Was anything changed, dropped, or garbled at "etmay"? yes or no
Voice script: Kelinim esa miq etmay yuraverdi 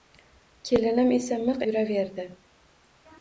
yes